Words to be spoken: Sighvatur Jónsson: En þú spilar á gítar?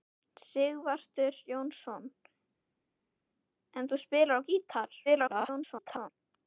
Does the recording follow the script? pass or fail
fail